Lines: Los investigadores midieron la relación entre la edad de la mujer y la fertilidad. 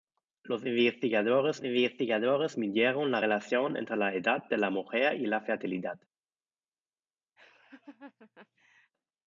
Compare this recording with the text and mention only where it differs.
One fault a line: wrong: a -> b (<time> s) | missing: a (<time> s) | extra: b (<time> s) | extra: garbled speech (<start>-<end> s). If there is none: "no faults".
extra: investigadores (1.6 s)